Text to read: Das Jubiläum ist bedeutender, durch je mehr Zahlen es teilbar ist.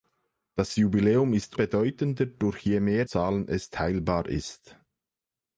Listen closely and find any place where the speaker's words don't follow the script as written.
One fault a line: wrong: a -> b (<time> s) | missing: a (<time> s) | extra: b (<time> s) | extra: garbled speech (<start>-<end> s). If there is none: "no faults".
no faults